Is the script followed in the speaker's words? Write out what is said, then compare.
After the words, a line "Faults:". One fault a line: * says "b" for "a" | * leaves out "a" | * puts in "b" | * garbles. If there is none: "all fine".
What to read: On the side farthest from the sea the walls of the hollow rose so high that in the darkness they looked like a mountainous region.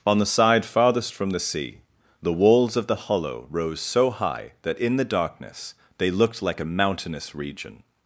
On the side farthest from the sea the walls of the hollow rose so high that in the darkness they looked like a mountainous region.
Faults:
all fine